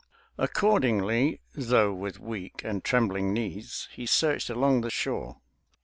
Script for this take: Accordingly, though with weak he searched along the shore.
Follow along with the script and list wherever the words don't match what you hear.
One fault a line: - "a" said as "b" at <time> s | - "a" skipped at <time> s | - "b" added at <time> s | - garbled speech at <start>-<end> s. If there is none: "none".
- "and trembling knees" added at 2.6 s